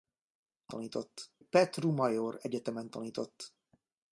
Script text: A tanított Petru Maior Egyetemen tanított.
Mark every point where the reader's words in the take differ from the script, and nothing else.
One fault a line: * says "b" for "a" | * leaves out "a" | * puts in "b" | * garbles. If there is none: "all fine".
all fine